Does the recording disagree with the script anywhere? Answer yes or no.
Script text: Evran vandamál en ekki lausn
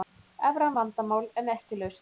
no